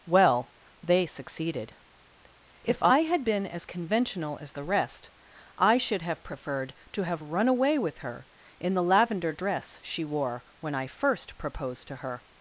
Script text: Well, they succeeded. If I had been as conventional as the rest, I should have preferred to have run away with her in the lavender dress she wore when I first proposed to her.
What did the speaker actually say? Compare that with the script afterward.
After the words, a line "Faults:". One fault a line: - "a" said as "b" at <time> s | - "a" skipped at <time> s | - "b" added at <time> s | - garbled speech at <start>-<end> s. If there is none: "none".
Well, they succeeded. If I had been as conventional as the rest, I should have preferred to have run away with her in the lavender dress she wore when I first proposed to her.
Faults:
none